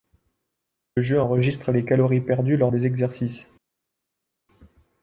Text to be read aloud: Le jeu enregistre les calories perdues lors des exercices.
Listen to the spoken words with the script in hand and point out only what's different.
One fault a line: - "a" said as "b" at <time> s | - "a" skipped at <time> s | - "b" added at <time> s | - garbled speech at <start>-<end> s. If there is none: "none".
none